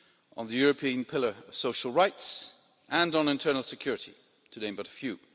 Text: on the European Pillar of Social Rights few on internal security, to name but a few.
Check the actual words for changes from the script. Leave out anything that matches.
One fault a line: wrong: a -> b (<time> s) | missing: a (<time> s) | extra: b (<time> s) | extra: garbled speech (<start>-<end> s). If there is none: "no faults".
wrong: few -> and (2.9 s)